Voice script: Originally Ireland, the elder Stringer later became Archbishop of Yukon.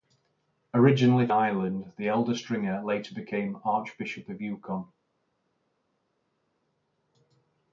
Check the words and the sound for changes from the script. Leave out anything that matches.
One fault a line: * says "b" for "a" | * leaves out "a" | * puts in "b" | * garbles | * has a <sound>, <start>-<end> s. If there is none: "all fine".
all fine